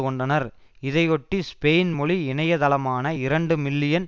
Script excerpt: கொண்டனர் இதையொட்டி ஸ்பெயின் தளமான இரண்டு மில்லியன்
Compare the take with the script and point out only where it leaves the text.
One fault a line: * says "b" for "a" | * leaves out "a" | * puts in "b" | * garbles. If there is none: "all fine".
* puts in "மொழி இணைய"